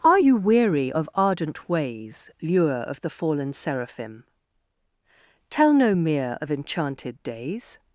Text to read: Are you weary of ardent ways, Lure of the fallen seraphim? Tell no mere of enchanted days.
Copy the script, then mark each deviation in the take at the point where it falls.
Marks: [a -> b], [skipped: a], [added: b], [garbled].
Are you weary of ardent ways, Lure of the fallen seraphim? Tell no mere of enchanted days.